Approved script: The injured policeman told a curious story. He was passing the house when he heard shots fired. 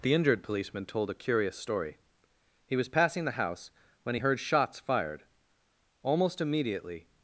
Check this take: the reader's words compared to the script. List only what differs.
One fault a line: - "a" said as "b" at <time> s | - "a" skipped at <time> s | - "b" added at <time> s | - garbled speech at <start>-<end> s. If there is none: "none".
- "Almost immediately" added at 6.0 s